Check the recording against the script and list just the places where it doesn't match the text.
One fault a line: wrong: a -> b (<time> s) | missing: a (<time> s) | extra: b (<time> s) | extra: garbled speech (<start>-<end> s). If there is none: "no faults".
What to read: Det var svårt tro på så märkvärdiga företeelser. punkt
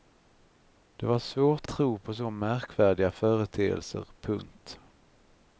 no faults